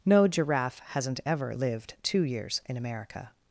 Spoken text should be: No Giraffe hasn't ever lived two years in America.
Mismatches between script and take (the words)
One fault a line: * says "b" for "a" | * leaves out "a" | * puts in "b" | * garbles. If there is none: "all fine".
all fine